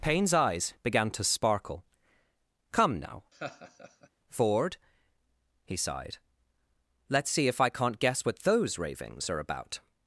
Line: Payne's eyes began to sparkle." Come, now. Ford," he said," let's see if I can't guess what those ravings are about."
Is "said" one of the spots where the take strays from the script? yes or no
yes